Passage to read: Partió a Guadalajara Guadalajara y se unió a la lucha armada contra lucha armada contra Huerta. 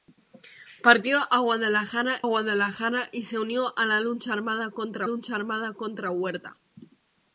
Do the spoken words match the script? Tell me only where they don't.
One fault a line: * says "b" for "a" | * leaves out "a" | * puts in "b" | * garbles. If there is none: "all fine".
all fine